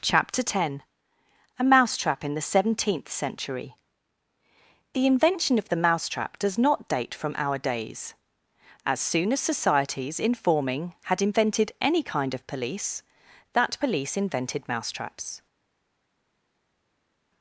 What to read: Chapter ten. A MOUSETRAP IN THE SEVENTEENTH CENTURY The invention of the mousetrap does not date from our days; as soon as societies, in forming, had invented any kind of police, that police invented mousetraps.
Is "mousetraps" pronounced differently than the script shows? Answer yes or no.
no